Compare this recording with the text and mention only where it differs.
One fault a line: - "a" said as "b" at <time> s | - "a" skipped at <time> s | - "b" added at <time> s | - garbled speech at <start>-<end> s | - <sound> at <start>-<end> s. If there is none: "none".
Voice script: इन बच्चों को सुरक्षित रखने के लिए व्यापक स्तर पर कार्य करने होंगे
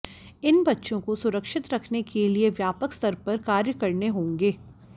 none